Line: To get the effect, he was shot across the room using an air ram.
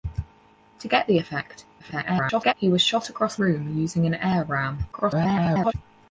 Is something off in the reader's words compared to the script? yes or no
yes